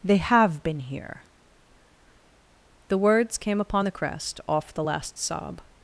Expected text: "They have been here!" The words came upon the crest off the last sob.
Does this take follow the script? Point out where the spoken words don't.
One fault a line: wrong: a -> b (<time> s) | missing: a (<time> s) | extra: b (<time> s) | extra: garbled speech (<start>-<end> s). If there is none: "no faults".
no faults